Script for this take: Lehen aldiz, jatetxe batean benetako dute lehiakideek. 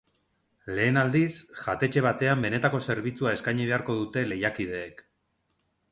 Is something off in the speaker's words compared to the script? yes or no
yes